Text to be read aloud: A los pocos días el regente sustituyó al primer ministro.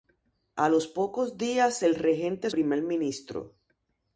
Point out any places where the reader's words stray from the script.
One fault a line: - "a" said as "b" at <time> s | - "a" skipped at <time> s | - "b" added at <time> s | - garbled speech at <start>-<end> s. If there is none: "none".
- "sustituyó al" skipped at 2.5 s